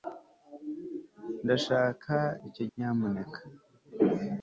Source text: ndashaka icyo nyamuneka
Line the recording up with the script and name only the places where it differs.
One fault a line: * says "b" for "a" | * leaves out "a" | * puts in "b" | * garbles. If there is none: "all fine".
all fine